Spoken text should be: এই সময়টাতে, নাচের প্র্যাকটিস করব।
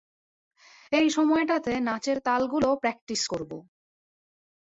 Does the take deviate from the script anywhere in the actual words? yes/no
yes